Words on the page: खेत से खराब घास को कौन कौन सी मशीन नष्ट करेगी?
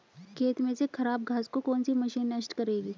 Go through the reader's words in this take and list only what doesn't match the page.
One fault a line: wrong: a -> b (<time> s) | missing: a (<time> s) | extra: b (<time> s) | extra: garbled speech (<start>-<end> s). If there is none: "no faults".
extra: में (0.6 s)
missing: कौन (1.8 s)